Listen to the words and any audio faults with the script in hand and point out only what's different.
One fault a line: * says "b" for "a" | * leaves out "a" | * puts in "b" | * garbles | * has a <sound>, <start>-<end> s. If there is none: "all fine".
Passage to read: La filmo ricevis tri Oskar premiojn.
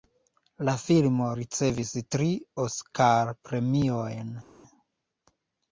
all fine